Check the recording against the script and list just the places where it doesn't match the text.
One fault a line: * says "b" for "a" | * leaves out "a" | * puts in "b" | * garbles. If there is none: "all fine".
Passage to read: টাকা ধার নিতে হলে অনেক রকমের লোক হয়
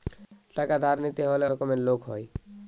* leaves out "অনেক"